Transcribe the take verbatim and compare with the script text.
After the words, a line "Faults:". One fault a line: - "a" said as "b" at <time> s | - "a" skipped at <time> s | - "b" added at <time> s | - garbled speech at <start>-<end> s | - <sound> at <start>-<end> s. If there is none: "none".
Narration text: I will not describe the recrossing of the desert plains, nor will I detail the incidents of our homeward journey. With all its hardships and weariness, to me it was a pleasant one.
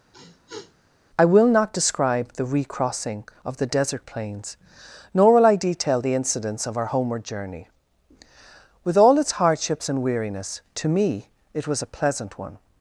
I will not describe the recrossing of the desert plains, nor will I detail the incidents of our homeward journey. With all its hardships and weariness, to me it was a pleasant one.
Faults:
- sniff at 0.1-0.7 s